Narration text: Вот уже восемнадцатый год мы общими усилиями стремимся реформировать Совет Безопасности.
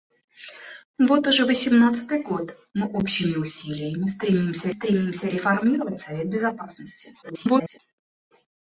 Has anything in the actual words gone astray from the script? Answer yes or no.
yes